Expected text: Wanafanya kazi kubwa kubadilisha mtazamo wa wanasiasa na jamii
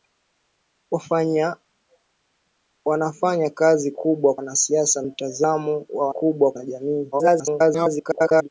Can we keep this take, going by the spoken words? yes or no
no